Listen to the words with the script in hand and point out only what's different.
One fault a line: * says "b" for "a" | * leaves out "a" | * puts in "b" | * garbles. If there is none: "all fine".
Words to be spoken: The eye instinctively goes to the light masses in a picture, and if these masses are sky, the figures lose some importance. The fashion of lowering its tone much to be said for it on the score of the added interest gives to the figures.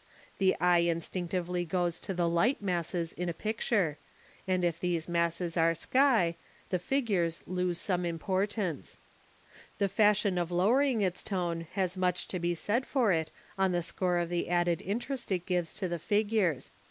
* puts in "has"
* puts in "it"